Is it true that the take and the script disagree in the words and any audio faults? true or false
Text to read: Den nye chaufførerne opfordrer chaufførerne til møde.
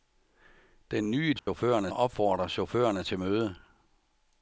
true